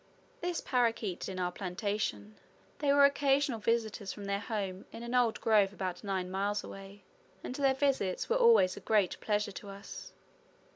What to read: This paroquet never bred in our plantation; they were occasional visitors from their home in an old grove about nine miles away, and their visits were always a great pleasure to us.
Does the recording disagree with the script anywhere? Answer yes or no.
yes